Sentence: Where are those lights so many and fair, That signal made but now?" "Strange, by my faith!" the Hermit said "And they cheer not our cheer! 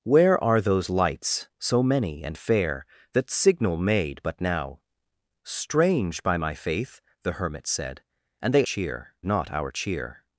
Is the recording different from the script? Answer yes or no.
no